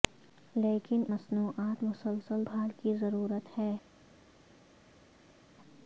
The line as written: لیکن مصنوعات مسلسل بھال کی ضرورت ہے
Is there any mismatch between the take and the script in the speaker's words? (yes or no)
no